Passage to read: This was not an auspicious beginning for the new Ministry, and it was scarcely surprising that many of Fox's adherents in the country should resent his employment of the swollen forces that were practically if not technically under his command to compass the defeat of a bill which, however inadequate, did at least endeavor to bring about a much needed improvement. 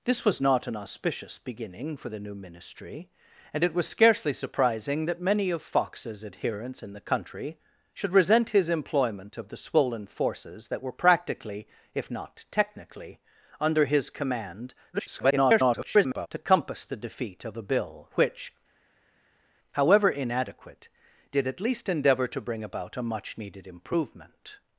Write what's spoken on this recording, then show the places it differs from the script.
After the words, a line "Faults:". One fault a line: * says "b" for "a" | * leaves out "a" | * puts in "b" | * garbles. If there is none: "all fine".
This was not an auspicious beginning for the new Ministry, and it was scarcely surprising that many of Fox's adherents in the country should resent his employment of the swollen forces that were practically if not technically under his command [garbled] to compass the defeat of a bill which, however inadequate, did at least endeavor to bring about a much needed improvement.
Faults:
* garbles